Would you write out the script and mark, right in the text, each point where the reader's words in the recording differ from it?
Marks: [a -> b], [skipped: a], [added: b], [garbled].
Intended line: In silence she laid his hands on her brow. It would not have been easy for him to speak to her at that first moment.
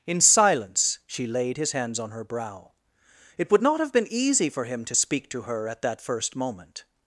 In silence she laid his hands on her brow. It would not have been easy for him to speak to her at that first moment.